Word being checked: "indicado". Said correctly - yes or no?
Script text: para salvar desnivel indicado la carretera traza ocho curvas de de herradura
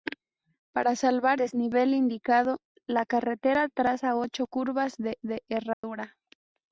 yes